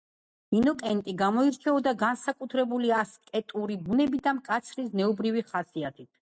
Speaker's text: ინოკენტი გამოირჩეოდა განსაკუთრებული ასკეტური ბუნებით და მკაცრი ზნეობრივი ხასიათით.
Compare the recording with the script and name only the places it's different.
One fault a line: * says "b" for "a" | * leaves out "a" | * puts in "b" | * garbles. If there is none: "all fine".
all fine